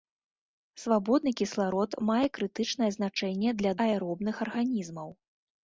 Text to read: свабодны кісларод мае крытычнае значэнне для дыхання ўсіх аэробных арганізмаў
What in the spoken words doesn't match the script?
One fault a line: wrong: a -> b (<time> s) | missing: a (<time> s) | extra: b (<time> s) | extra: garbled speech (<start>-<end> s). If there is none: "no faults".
missing: дыхання ўсіх (3.7 s)